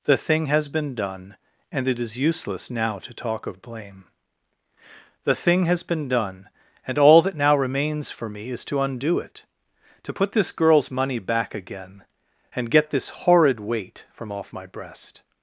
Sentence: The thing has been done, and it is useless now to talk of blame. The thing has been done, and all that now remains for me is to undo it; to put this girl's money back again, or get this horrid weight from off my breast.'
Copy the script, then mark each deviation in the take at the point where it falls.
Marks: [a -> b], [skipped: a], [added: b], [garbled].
The thing has been done, and it is useless now to talk of blame. The thing has been done, and all that now remains for me is to undo it; to put this girl's money back again, [or -> and] get this horrid weight from off my breast.'